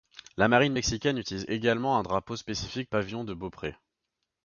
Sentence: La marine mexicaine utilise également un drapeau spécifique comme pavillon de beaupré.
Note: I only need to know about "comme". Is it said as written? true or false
false